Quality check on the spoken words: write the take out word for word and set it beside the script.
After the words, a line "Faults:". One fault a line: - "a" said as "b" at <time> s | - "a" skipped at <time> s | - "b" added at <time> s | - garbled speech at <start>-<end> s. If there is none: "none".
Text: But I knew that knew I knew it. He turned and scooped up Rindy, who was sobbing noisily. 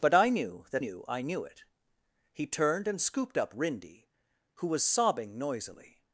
But I knew that knew I knew it. He turned and scooped up Rindy, who was sobbing noisily.
Faults:
none